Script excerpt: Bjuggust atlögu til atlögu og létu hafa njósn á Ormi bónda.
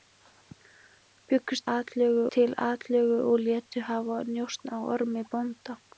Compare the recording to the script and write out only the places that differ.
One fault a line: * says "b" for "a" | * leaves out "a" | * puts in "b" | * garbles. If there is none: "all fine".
all fine